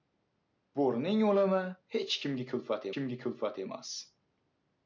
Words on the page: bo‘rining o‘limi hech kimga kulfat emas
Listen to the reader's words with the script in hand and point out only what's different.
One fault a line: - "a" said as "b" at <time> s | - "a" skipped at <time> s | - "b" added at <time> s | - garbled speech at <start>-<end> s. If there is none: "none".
- "kimga kulfat" added at 3.0 s